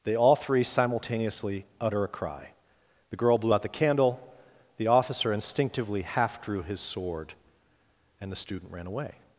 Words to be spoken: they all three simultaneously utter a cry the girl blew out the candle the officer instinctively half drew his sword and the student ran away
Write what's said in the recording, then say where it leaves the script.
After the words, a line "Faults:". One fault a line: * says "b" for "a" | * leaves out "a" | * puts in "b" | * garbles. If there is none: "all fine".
they all three simultaneously utter a cry the girl blew out the candle the officer instinctively half drew his sword and the student ran away
Faults:
all fine